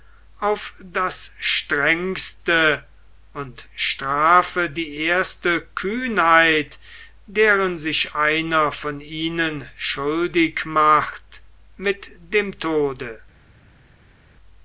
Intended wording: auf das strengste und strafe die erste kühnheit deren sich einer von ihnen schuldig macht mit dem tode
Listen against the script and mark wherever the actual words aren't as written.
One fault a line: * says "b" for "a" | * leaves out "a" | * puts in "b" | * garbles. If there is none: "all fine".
all fine